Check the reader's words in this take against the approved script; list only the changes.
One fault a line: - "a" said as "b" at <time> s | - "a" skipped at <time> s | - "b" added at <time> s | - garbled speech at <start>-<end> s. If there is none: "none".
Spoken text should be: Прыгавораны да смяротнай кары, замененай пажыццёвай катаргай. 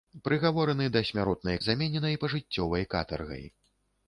- "кары" skipped at 1.6 s